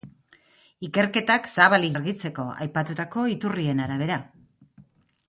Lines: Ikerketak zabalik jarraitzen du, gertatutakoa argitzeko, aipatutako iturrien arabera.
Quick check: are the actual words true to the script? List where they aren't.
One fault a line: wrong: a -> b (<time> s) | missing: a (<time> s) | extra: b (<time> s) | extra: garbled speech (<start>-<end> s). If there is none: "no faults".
missing: jarraitzen du gertatutakoa (1.9 s)